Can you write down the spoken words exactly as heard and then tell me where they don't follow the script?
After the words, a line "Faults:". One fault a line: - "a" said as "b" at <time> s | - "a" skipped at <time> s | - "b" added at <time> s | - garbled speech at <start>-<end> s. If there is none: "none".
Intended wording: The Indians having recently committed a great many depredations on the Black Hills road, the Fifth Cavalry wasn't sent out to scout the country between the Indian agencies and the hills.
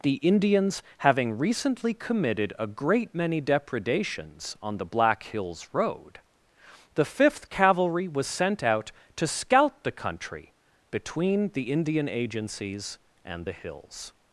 The Indians having recently committed a great many depredations on the Black Hills road, the Fifth Cavalry was sent out to scout the country between the Indian agencies and the hills.
Faults:
- "wasn't" said as "was" at 8.1 s